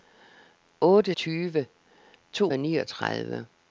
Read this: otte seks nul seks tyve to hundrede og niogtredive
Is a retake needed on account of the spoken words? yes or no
yes